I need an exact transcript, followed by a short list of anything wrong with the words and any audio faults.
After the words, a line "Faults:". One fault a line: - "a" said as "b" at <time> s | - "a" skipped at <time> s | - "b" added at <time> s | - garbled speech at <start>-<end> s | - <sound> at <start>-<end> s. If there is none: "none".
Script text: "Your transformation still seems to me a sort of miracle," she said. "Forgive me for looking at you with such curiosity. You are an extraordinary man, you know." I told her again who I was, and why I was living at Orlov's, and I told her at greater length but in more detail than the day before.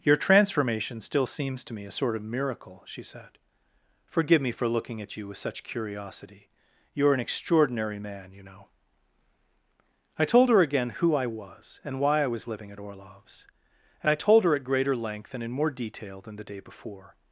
"Your transformation still seems to me a sort of miracle," she said. "Forgive me for looking at you with such curiosity. You are an extraordinary man, you know." I told her again who I was, and why I was living at Orlov's, and I told her at greater length and in more detail than the day before.
Faults:
- "but" said as "and" at 15.3 s